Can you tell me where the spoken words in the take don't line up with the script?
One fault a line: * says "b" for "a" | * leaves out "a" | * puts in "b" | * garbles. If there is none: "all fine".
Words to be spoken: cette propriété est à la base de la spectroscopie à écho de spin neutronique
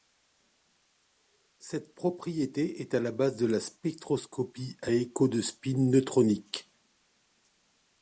all fine